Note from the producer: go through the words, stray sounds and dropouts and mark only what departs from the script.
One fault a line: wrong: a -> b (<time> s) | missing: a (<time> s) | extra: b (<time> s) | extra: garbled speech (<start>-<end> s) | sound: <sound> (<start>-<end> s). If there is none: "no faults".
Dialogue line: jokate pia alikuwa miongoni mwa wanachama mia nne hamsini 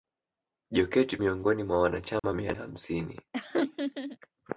missing: pia alikuwa (1.2 s)
sound: dropout (2.2-2.2 s)
missing: nne (2.5 s)
sound: laugh (3.3-4.2 s)